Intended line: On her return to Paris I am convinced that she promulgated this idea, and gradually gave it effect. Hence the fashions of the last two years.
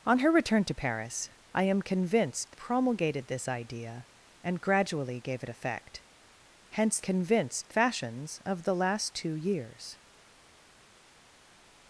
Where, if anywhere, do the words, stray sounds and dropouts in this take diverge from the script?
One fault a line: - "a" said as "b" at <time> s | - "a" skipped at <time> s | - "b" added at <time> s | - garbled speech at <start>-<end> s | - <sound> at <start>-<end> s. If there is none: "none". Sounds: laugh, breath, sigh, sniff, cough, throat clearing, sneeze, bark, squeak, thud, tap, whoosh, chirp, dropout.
- "that she" skipped at 2.6 s
- "the" said as "convinced" at 7.0 s